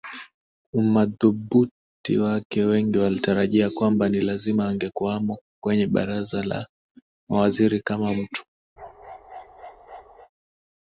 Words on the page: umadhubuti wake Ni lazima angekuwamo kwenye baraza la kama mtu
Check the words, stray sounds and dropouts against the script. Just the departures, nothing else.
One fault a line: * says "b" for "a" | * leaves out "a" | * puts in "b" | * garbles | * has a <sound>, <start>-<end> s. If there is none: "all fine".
* puts in "Wengi walitarajia kwamba"
* puts in "mawaziri"
* has a bark, 8.8-10.3 s